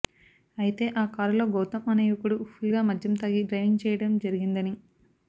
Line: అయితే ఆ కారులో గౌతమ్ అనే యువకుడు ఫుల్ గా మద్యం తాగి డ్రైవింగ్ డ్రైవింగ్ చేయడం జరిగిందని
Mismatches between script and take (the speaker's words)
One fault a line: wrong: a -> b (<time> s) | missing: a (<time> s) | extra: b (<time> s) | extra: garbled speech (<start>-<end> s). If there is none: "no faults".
missing: డ్రైవింగ్ (3.8 s)